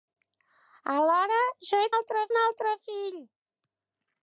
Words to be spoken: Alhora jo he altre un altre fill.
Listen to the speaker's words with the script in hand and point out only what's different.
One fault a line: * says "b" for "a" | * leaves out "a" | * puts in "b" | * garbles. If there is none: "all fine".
all fine